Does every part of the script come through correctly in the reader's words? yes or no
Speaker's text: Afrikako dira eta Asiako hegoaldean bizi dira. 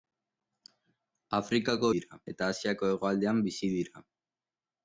yes